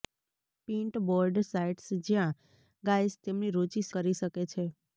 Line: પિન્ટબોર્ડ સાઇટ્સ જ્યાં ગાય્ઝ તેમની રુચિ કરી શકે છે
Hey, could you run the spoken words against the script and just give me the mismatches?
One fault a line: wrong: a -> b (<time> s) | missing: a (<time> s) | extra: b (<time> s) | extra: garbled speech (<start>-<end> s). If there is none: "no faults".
no faults